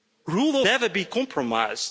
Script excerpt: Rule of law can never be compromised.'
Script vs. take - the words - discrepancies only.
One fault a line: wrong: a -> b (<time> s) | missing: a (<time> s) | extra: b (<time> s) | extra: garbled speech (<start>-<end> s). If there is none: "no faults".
missing: of law can (0.6 s)